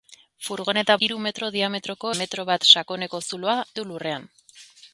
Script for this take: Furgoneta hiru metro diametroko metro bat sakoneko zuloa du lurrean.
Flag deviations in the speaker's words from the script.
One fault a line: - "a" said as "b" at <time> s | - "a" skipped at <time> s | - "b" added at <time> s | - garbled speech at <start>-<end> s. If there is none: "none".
none